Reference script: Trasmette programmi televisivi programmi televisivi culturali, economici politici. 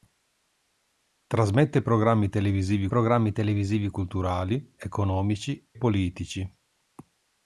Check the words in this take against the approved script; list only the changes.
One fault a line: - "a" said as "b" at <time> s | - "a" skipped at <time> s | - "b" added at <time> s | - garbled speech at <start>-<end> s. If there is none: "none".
none